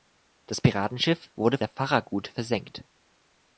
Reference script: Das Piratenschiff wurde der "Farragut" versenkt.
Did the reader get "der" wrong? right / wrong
right